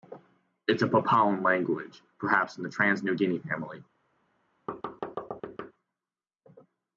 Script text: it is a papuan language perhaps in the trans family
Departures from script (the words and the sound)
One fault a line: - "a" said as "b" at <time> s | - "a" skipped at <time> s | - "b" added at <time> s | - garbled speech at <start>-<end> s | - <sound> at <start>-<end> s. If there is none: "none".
- "new guinea" added at 3.0 s
- thud at 4.7-5.7 s